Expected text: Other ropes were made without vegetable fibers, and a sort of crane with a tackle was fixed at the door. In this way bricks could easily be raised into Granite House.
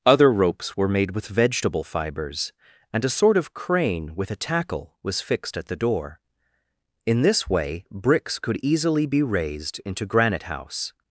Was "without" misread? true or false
true